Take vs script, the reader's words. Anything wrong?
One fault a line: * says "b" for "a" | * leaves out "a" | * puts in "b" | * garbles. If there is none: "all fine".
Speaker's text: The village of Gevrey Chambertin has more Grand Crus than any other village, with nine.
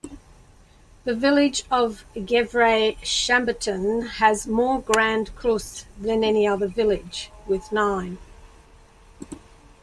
all fine